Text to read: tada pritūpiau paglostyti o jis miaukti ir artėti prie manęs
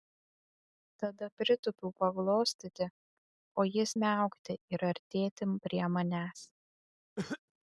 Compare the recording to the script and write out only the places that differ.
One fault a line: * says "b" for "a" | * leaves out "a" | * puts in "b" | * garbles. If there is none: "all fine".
all fine